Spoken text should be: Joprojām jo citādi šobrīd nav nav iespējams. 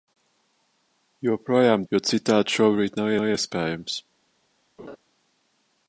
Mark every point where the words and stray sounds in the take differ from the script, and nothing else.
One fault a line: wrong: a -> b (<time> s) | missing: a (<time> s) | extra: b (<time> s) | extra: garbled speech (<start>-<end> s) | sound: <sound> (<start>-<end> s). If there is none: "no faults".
sound: laugh (4.8-5.0 s)